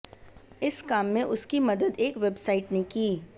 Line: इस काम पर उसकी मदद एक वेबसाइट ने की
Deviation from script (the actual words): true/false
true